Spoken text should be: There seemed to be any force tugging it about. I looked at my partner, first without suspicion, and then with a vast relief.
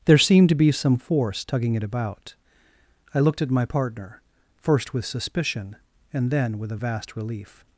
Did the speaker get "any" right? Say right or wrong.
wrong